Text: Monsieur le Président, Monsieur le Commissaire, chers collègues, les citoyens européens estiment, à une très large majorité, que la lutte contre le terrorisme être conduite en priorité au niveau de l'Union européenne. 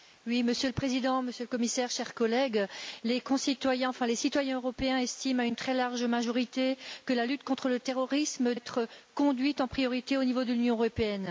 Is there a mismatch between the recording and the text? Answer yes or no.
no